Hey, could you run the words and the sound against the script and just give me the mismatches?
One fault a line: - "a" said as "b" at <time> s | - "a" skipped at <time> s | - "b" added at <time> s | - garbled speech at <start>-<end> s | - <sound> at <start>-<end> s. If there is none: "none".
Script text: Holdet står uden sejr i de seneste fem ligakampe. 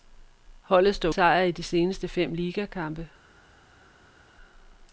- "uden" skipped at 1.1 s